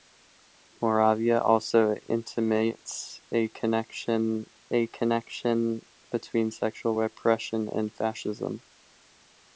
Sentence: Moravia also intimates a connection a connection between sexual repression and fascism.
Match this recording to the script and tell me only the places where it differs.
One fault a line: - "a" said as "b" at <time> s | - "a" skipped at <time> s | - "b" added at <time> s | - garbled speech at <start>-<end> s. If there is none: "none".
none